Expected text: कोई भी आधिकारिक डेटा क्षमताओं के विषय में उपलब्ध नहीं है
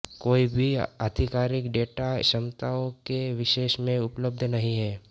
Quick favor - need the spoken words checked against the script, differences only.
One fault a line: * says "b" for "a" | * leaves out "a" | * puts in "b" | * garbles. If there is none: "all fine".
all fine